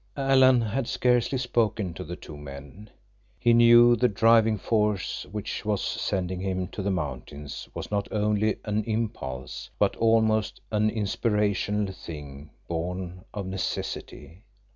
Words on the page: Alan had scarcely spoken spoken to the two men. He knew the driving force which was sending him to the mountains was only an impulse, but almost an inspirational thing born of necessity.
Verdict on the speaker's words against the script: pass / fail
fail